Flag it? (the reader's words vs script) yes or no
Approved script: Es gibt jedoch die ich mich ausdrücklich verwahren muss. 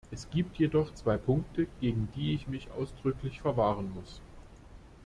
yes